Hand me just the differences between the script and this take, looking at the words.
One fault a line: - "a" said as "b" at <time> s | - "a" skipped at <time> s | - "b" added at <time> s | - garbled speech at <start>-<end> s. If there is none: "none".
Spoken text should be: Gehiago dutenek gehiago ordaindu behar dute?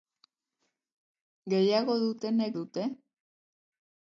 - "gehiago ordaindu behar" skipped at 2.5 s